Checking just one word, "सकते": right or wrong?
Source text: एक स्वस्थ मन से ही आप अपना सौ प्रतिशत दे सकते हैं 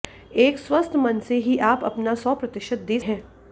wrong